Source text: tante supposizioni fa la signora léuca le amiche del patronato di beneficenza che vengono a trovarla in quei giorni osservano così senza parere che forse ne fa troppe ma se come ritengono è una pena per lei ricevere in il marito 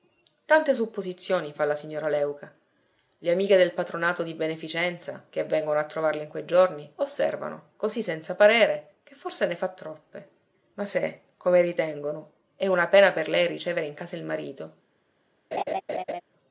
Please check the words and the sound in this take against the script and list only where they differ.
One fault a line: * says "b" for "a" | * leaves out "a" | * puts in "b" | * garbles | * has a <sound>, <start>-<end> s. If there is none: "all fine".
* puts in "casa"
* has a laugh, 15.5-16.2 s